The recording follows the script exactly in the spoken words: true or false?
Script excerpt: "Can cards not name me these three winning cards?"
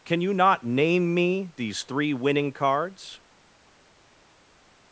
false